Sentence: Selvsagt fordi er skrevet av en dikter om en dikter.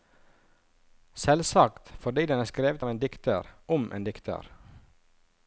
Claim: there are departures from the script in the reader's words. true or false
true